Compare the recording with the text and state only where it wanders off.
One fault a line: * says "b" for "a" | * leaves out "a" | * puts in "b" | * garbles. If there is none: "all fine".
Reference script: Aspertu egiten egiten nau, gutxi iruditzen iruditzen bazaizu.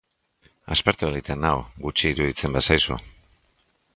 * leaves out "egiten"
* leaves out "iruditzen"